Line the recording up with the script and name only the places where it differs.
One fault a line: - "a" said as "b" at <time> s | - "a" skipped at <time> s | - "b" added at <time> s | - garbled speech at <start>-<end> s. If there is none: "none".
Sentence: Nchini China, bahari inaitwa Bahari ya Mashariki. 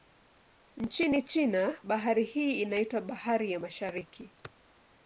- "hii" added at 2.2 s